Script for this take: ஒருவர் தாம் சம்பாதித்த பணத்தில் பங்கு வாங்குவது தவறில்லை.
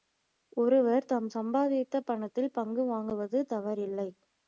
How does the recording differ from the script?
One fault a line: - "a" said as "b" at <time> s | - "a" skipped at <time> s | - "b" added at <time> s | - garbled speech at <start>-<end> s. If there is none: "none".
none